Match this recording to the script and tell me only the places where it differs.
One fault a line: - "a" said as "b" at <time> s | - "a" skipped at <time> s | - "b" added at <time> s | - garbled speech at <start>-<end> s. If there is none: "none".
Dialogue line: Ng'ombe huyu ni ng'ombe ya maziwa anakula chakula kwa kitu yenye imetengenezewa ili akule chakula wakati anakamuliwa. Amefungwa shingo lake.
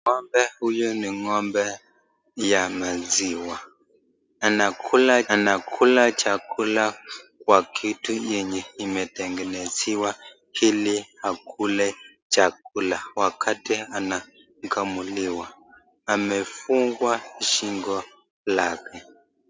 - "anakula" added at 5.3 s